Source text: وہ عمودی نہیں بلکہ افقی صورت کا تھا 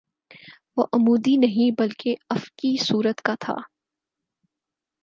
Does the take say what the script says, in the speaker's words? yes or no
yes